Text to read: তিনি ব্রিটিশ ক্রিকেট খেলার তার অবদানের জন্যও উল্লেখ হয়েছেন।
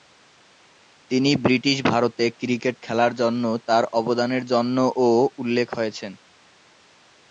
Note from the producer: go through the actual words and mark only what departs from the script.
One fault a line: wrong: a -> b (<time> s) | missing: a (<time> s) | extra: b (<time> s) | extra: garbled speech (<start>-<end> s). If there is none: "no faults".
extra: ভারতে (1.9 s)
extra: জন্য (3.2 s)